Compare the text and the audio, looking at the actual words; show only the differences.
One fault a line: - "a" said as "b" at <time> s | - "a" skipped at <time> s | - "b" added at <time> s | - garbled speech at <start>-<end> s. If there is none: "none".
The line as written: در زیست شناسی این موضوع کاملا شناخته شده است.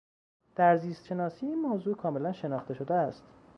none